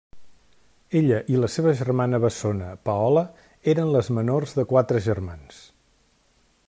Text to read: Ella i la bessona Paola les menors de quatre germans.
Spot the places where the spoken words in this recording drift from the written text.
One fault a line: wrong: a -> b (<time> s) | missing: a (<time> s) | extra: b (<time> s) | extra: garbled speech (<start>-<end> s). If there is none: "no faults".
extra: seva germana (1.5 s)
extra: eren (3.7 s)